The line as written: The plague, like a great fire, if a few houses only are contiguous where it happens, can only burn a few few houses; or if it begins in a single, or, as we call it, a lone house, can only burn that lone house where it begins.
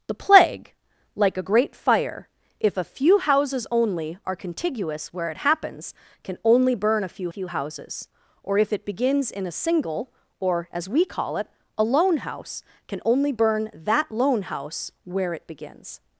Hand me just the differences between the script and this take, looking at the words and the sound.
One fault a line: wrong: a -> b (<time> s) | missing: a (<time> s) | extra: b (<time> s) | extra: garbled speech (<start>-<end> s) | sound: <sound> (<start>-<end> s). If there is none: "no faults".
no faults